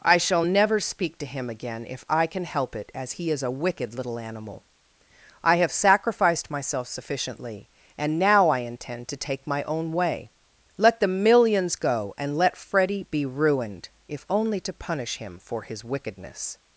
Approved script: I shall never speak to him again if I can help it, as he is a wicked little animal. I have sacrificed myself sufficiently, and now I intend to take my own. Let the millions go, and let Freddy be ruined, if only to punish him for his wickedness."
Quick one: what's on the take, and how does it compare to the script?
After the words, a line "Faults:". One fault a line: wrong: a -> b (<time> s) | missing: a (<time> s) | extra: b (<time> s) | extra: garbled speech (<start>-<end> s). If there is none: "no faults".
I shall never speak to him again if I can help it, as he is a wicked little animal. I have sacrificed myself sufficiently, and now I intend to take my own way. Let the millions go, and let Freddy be ruined, if only to punish him for his wickedness."
Faults:
extra: way (9.9 s)